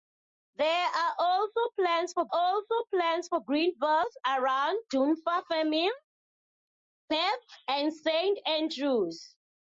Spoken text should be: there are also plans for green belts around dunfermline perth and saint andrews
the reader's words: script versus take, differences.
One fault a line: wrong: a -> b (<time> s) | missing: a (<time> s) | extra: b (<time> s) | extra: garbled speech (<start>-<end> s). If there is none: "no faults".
extra: also plans for (2.3 s)